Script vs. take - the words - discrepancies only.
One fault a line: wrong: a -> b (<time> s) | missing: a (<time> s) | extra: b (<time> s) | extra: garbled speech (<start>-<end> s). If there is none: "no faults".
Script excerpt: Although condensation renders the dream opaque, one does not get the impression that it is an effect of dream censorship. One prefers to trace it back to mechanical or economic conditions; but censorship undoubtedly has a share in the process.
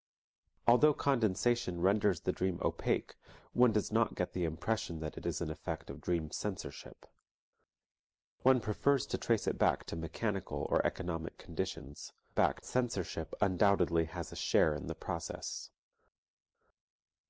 wrong: but -> back (12.4 s)